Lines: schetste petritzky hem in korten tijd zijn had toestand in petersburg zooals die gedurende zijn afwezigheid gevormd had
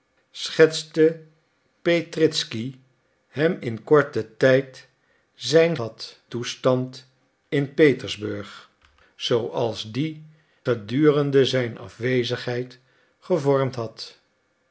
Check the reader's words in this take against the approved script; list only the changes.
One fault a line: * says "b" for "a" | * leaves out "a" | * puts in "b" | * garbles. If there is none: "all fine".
all fine